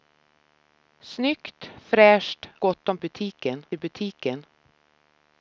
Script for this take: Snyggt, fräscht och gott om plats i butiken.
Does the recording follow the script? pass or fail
fail